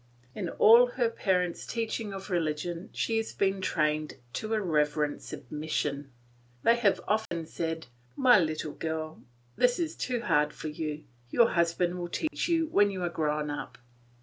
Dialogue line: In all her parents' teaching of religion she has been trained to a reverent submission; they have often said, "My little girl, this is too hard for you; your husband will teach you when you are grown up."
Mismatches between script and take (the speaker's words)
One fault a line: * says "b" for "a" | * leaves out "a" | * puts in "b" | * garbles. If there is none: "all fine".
all fine